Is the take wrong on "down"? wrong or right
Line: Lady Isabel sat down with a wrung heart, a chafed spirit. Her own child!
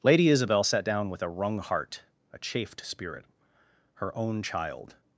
right